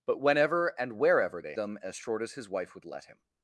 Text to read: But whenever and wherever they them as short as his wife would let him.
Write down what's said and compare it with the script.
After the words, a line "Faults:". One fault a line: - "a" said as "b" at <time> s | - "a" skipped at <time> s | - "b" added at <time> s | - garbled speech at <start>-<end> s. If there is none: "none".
But whenever and wherever they them as short as his wife would let him.
Faults:
none